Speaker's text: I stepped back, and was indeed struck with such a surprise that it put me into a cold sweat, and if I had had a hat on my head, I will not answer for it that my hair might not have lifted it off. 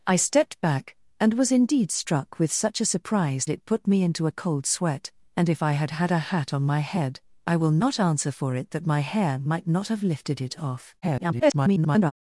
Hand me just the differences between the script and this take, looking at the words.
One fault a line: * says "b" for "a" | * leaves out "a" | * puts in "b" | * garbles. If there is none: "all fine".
* leaves out "that"
* garbles